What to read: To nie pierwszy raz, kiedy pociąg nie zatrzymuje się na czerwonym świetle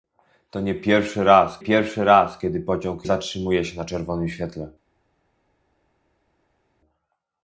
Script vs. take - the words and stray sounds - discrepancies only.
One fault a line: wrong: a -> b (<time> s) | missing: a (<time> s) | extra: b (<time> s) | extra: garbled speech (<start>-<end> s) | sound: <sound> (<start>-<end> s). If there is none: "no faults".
extra: pierwszy raz (1.6 s)
missing: nie (3.1 s)